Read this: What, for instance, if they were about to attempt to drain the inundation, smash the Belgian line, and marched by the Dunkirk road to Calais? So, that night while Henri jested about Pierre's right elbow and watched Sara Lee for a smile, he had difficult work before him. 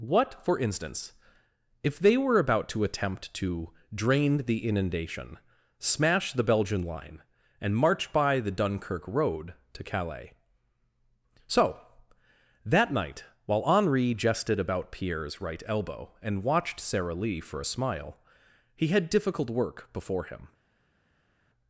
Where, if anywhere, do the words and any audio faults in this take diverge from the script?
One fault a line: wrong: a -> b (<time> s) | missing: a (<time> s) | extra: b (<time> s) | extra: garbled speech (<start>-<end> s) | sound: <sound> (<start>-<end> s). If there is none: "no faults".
wrong: marched -> march (7.8 s)